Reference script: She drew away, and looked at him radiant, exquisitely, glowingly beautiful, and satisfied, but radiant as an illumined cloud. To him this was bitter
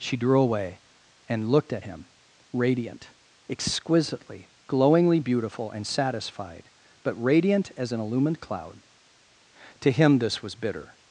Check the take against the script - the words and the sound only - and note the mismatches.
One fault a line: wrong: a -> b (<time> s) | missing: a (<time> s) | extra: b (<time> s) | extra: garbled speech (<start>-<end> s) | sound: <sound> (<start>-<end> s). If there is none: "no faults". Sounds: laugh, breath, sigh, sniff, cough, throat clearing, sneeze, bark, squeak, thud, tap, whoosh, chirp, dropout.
no faults